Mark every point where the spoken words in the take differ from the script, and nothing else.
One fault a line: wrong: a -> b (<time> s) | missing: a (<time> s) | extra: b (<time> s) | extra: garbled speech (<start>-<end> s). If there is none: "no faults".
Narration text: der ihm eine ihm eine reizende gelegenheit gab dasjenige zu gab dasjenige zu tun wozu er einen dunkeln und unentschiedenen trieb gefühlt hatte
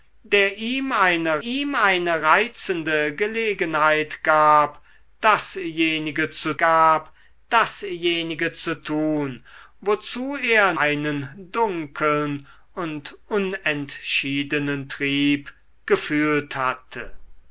no faults